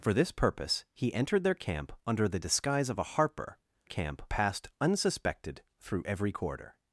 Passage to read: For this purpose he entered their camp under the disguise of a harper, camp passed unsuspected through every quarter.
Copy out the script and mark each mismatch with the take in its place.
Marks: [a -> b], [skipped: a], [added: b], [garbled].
For this purpose he entered their camp under the disguise of a harper, camp passed unsuspected through every quarter.